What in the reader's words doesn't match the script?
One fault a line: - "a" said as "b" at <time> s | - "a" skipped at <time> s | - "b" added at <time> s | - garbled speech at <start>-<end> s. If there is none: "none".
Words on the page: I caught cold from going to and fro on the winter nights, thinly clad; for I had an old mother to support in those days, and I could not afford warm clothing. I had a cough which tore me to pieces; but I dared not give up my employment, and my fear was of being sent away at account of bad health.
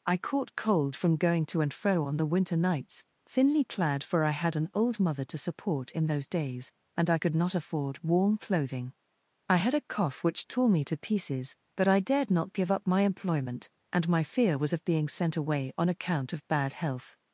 - "at" said as "on" at 15.8 s